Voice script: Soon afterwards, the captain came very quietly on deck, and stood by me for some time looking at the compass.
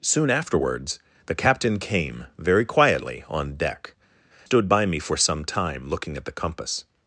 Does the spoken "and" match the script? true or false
false